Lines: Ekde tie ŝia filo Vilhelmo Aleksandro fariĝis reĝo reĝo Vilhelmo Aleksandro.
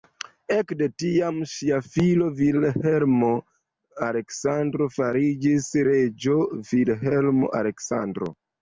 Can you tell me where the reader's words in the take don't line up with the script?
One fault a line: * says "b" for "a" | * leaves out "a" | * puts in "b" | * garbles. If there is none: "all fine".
* says "tiam" for "tie"
* leaves out "reĝo"